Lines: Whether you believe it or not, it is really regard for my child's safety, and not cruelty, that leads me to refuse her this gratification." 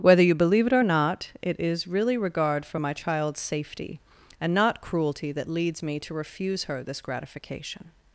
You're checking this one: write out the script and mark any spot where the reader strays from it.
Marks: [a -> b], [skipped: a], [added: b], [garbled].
Whether you believe it or not, it is really regard for my child's safety, and not cruelty, that leads me to refuse her this gratification."